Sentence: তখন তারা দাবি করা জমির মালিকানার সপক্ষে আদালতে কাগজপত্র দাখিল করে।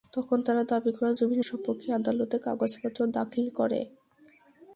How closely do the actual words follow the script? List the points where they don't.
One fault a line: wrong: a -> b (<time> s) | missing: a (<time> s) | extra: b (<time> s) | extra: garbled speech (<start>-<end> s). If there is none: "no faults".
missing: মালিকানার (1.4 s)